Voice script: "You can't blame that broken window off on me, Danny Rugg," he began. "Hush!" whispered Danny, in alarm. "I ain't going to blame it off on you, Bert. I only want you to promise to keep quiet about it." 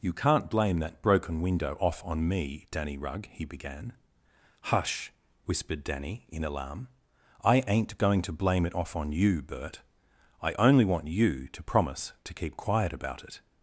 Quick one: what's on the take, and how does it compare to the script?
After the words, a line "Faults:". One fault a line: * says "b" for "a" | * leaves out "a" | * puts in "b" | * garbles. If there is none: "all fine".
"You can't blame that broken window off on me, Danny Rugg," he began. "Hush!" whispered Danny, in alarm. "I ain't going to blame it off on you, Bert. I only want you to promise to keep quiet about it."
Faults:
all fine